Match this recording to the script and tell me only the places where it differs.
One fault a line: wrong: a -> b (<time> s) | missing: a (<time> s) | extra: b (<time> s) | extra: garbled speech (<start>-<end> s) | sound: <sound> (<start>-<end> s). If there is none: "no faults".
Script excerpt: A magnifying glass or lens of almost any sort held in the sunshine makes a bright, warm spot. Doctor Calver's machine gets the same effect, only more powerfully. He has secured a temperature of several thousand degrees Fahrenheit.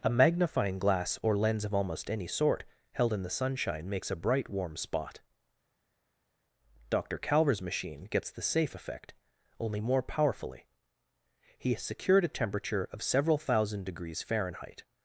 wrong: same -> safe (8.4 s)